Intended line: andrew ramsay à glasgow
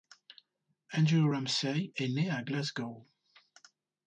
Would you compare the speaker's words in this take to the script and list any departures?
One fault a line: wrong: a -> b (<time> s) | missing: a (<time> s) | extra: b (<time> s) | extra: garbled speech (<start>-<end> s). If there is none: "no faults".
extra: est né (1.9 s)